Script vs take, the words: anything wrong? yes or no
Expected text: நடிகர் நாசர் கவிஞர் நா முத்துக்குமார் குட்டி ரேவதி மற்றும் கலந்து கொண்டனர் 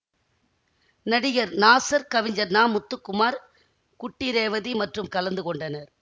no